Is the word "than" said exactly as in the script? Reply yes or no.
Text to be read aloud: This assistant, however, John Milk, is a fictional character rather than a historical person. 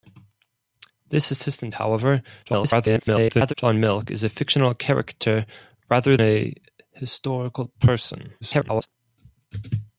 no